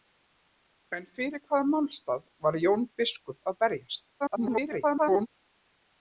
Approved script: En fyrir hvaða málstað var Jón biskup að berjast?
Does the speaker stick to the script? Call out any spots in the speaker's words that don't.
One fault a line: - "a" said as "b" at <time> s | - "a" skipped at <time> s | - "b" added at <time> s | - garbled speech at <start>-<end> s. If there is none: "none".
- garbled speech at 4.2-5.3 s